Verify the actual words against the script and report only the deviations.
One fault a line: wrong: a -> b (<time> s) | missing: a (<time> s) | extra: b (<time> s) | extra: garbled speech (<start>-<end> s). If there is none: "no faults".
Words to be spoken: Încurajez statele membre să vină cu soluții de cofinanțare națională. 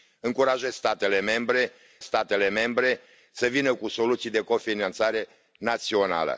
extra: statele membre (2.0 s)